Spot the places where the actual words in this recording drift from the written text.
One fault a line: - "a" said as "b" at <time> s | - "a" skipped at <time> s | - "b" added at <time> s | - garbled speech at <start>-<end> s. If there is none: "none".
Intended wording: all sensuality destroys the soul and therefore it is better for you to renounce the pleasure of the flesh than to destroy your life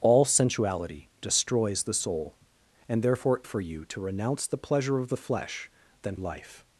- "it is better" skipped at 3.4 s
- "to destroy your" skipped at 6.2 s